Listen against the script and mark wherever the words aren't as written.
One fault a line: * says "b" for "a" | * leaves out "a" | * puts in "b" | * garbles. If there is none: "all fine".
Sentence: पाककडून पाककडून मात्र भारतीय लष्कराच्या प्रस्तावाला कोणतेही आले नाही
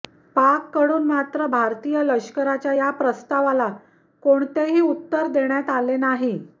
* leaves out "पाककडून"
* puts in "या"
* puts in "उत्तर देण्यात"